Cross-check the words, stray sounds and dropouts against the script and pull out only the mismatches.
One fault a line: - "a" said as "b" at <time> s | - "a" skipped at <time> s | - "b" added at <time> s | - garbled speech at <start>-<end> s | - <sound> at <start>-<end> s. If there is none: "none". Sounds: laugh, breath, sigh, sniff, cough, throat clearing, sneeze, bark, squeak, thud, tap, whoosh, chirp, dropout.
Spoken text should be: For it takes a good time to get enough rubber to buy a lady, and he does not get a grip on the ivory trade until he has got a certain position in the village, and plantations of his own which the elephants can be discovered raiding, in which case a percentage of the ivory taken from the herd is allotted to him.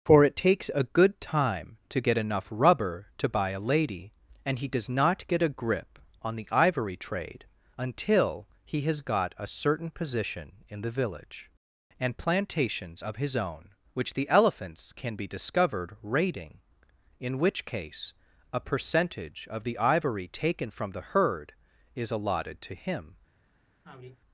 - sigh at 23.8-24.2 s